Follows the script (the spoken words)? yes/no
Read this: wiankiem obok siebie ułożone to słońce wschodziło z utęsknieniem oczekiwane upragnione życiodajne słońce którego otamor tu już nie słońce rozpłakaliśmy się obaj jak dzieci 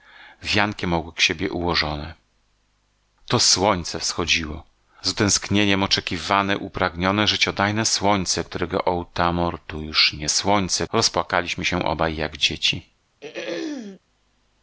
yes